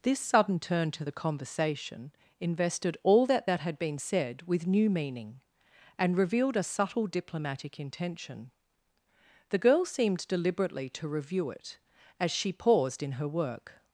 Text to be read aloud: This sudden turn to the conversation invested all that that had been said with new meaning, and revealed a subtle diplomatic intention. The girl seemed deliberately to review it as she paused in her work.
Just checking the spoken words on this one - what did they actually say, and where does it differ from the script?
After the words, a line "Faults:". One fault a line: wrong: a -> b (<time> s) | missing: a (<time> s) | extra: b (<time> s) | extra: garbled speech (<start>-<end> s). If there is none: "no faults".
This sudden turn to the conversation invested all that that had been said with new meaning, and revealed a subtle diplomatic intention. The girl seemed deliberately to review it as she paused in her work.
Faults:
no faults